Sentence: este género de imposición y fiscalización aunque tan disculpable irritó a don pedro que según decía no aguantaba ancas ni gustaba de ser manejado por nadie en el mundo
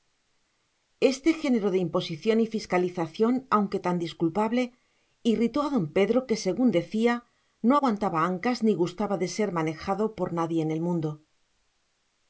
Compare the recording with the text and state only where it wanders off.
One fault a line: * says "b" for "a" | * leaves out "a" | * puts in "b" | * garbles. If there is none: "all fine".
all fine